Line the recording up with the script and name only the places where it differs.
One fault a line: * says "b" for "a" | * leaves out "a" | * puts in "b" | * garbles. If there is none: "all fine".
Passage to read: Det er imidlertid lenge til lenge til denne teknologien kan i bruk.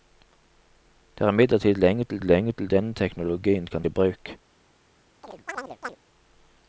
all fine